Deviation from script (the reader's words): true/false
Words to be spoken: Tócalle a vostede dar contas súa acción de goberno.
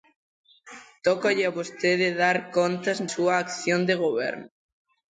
false